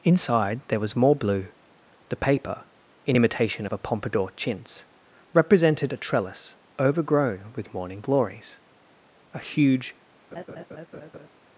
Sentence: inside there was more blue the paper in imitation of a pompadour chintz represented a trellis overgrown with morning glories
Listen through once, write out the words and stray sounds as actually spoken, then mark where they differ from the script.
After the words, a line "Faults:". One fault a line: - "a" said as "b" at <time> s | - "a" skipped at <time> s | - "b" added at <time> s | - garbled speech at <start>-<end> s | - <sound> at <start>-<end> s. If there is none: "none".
inside there was more blue the paper in imitation of a pompadour chintz represented a trellis overgrown with morning glories a huge
Faults:
- "a huge" added at 9.3 s
- laugh at 10.3-11.3 s